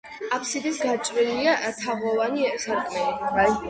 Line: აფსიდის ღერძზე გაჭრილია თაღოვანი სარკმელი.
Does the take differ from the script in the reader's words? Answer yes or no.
yes